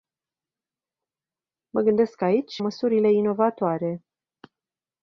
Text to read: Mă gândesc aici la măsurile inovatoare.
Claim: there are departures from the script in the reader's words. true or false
true